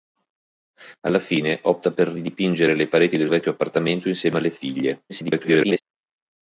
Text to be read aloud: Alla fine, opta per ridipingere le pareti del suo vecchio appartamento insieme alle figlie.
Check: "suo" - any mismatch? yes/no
yes